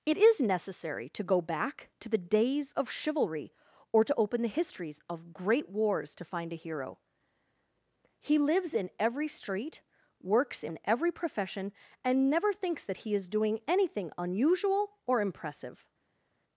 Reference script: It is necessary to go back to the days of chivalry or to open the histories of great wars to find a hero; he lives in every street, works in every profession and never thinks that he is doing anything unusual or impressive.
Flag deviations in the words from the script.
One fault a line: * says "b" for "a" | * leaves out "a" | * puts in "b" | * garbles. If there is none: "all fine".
all fine